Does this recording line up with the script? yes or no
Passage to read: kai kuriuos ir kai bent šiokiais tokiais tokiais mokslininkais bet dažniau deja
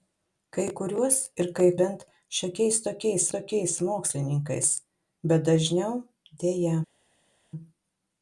yes